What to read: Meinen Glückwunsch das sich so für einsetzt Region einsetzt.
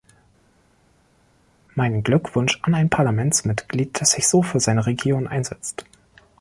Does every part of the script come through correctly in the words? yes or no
no